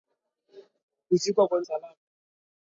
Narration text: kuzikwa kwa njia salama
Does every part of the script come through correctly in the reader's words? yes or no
no